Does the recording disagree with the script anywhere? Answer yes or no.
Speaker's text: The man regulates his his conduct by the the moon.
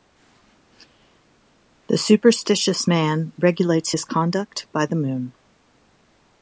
yes